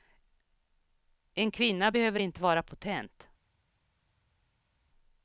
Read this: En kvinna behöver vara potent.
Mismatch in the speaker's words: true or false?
true